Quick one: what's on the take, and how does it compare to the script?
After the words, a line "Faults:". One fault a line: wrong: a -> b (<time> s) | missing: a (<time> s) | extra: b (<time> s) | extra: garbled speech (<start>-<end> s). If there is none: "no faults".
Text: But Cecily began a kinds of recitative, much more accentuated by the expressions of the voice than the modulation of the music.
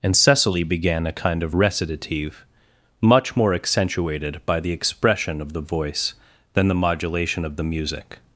And Cecily began a kind of recitative, much more accentuated by the expression of the voice than the modulation of the music.
Faults:
wrong: But -> And (0.0 s)
wrong: kinds -> kind (1.1 s)
wrong: expressions -> expression (4.7 s)